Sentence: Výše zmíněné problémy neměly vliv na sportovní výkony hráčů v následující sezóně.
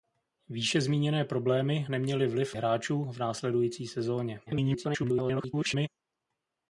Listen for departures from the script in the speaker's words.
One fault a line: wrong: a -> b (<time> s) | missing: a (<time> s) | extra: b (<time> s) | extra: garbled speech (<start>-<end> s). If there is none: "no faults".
missing: na sportovní výkony (2.5 s)
extra: garbled speech (4.5-5.9 s)